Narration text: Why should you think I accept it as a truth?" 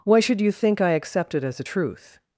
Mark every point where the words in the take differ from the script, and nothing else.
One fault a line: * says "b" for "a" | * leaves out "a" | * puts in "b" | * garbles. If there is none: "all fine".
all fine